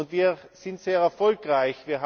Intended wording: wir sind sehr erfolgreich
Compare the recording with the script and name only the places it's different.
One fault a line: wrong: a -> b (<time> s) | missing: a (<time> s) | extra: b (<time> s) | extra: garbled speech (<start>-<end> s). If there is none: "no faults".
no faults